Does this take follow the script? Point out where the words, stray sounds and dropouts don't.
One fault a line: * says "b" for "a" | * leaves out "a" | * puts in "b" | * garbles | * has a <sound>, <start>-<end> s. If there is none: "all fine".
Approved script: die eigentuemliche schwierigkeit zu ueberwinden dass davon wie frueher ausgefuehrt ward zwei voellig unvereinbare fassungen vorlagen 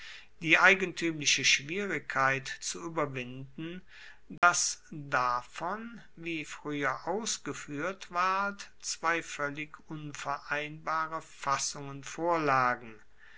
* has a dropout, 4.4-4.4 s